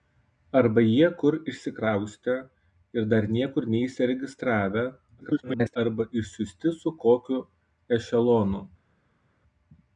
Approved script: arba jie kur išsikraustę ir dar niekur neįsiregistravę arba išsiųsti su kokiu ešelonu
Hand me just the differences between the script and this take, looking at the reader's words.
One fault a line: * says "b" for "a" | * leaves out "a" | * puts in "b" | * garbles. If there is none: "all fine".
* garbles